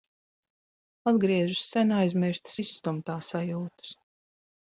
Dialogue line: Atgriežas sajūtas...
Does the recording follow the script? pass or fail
fail